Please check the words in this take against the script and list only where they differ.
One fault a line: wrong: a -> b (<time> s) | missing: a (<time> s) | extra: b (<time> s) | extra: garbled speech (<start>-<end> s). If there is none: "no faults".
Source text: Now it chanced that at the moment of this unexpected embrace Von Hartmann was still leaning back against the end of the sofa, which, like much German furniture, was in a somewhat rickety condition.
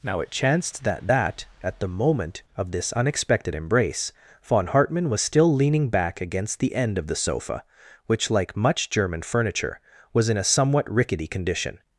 extra: that (1.1 s)